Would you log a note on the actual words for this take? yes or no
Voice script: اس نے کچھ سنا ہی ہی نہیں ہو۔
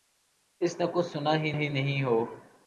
no